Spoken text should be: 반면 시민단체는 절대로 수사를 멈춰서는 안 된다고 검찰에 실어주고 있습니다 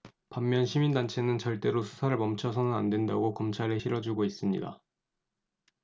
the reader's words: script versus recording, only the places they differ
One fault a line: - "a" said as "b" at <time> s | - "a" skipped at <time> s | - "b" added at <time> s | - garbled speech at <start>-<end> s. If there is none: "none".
none